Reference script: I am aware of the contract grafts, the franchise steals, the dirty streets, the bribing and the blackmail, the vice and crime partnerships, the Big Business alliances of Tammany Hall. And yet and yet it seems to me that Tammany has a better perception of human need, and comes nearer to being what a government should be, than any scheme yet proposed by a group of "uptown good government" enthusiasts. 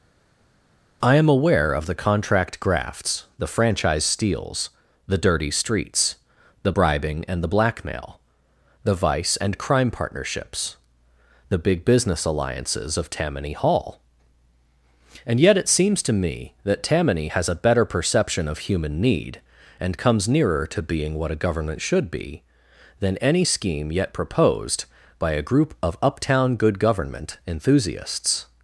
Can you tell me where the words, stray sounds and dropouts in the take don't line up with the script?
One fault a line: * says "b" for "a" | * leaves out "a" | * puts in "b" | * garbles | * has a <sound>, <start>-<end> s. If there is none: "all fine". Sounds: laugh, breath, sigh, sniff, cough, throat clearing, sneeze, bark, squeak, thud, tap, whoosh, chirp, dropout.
* leaves out "and yet"